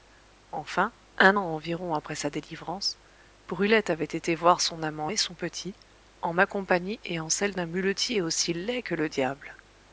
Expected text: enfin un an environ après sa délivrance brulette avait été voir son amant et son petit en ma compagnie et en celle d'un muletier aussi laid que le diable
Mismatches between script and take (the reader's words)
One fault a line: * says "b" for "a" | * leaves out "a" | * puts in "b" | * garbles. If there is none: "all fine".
all fine